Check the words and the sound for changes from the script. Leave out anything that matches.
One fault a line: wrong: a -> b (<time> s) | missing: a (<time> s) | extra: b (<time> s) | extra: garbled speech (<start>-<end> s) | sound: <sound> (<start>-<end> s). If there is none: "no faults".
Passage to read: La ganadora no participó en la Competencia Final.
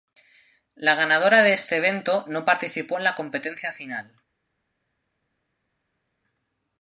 extra: de este evento (1.4 s)